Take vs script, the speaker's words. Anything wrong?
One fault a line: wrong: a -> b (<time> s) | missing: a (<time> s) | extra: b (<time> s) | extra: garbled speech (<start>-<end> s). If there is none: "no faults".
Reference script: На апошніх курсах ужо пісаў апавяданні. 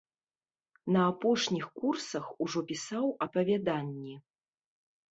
no faults